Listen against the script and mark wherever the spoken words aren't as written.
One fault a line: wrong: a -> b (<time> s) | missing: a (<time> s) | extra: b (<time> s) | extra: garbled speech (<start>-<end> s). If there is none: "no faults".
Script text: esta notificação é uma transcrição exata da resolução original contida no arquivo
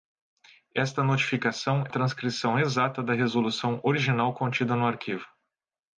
missing: uma (1.9 s)